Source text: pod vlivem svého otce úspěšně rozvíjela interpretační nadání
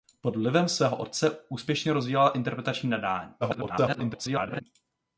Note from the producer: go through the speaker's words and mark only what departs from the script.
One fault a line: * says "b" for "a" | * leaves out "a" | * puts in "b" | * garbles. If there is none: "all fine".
* garbles